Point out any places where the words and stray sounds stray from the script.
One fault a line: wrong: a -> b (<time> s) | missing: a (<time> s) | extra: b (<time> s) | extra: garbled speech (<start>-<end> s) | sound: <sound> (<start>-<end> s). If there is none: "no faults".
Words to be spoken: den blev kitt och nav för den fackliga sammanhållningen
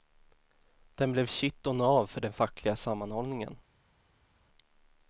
no faults